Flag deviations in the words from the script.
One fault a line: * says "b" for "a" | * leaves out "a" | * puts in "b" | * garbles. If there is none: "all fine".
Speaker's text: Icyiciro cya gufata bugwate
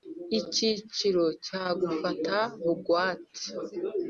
all fine